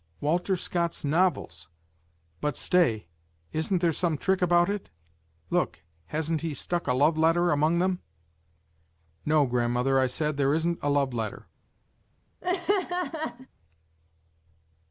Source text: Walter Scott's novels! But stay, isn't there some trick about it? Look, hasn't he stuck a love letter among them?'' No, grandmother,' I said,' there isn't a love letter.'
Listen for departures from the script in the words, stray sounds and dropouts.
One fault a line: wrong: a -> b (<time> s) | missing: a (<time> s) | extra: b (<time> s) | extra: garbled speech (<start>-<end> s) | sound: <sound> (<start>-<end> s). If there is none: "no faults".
sound: laugh (12.4-13.5 s)